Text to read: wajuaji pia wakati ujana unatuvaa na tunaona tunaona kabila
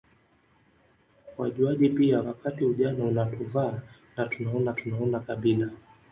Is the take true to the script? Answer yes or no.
yes